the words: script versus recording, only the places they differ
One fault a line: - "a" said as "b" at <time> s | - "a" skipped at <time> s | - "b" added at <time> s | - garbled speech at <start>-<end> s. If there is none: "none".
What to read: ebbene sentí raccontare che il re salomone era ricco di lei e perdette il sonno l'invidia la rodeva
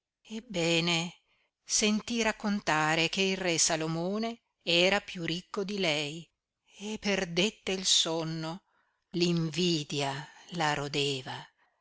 - "piú" added at 5.0 s